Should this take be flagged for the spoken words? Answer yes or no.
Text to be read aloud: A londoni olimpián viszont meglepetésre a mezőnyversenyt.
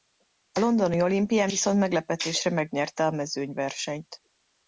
yes